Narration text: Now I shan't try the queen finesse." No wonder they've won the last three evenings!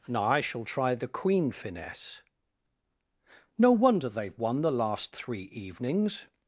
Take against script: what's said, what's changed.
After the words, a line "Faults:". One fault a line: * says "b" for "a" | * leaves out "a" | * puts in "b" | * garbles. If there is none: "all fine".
Now I shall try the queen finesse." No wonder they've won the last three evenings!
Faults:
* says "shall" for "shan't"